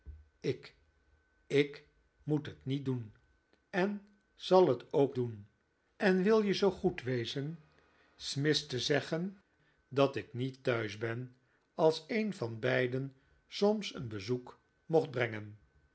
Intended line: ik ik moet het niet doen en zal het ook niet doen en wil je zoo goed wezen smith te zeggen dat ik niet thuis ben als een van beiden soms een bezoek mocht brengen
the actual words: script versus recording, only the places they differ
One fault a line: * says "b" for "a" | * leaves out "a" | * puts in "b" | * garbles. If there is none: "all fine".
* leaves out "niet"